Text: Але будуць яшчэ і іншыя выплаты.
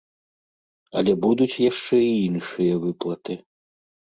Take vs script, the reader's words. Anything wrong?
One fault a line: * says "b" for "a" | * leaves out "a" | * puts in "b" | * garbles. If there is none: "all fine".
all fine